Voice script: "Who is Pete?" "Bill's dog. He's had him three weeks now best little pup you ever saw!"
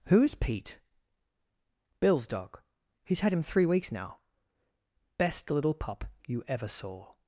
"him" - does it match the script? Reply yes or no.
yes